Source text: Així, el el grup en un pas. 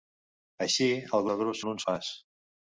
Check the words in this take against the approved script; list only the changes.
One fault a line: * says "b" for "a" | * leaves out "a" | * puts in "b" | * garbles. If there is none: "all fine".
all fine